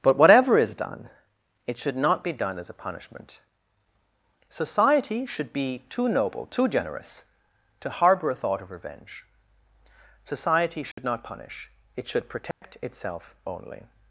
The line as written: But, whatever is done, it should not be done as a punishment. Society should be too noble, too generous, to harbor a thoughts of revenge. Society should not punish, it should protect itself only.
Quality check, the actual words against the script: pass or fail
fail